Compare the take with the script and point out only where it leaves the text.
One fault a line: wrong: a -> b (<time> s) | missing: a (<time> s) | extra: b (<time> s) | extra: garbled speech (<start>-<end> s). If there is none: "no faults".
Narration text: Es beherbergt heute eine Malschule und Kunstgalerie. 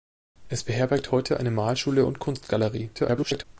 extra: garbled speech (2.9-3.4 s)